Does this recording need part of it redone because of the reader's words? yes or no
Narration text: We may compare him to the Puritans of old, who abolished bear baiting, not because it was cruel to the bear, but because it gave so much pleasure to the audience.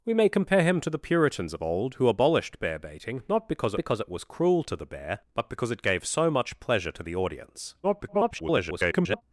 yes